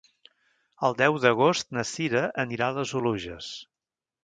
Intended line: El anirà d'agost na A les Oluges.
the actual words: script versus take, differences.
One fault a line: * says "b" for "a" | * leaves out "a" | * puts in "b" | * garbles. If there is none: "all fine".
* says "deu" for "anirà"
* puts in "Cira anirà"